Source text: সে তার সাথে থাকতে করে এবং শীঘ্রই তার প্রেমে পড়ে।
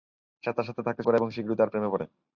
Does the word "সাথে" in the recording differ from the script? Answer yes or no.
no